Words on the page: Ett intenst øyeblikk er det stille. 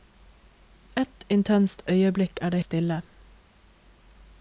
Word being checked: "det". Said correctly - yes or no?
yes